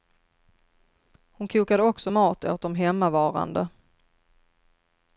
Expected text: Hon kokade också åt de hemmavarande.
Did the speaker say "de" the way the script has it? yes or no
yes